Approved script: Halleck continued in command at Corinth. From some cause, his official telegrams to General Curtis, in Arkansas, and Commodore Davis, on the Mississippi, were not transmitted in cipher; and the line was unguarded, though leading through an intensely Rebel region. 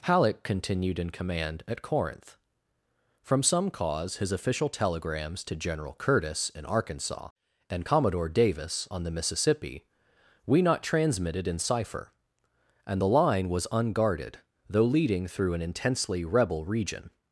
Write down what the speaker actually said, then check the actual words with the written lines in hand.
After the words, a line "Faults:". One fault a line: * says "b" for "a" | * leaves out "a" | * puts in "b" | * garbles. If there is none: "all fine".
Halleck continued in command at Corinth. From some cause, his official telegrams to General Curtis, in Arkansas, and Commodore Davis, on the Mississippi, we not transmitted in cipher; and the line was unguarded, though leading through an intensely Rebel region.
Faults:
* says "we" for "were"